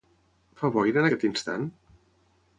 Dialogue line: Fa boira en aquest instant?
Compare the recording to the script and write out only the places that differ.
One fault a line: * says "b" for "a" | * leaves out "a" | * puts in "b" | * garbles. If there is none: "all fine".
all fine